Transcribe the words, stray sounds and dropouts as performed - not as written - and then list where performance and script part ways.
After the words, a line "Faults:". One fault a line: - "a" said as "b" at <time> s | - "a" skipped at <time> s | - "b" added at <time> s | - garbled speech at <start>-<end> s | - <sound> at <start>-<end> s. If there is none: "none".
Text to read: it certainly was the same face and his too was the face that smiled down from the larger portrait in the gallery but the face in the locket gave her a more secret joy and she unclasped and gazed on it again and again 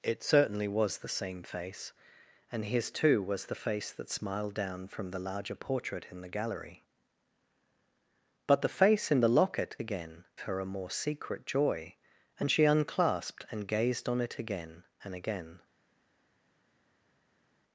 it certainly was the same face and his too was the face that smiled down from the larger portrait in the gallery but the face in the locket again her a more secret joy and she unclasped and gazed on it again and again
Faults:
- "gave" said as "again" at 9.8 s